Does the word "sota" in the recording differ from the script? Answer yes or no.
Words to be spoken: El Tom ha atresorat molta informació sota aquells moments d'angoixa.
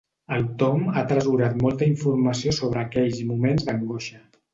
yes